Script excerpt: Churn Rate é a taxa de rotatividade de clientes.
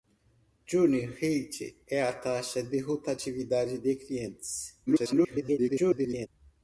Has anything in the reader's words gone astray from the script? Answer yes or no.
yes